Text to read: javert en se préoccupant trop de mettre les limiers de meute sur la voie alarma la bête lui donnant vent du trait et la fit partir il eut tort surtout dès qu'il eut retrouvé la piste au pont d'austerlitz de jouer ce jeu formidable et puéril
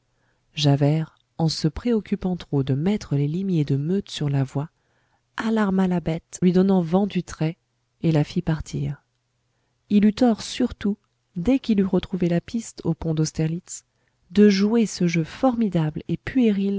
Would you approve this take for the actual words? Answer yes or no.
yes